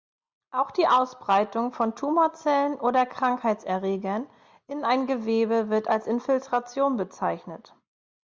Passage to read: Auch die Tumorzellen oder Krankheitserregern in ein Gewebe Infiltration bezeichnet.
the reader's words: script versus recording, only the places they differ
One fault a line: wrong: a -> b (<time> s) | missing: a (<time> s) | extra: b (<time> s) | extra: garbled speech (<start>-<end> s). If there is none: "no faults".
extra: Ausbreitung von (0.9 s)
extra: wird als (5.7 s)